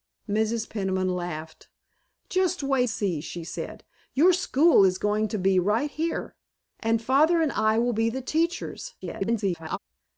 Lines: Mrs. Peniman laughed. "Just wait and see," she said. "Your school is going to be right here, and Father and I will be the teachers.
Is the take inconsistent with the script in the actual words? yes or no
yes